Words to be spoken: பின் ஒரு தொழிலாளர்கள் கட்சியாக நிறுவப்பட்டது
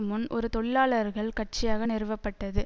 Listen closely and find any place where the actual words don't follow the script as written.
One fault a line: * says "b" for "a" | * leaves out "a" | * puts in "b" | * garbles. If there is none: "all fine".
* says "முன்" for "பின்"